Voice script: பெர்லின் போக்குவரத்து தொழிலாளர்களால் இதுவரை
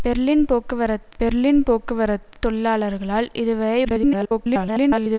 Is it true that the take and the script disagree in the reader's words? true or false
true